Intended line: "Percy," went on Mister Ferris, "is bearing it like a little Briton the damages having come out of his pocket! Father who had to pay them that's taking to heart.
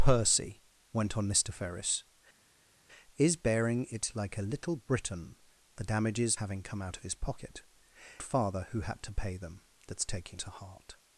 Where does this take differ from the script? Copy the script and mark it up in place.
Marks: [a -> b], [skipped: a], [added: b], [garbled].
"Percy," went on Mister Ferris, "is bearing it like a little Briton the damages having come out of his pocket! Father who had to pay them that's taking to heart.